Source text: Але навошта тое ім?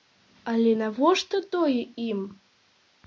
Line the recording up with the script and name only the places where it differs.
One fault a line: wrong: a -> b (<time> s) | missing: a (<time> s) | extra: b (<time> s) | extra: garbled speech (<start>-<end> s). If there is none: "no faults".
no faults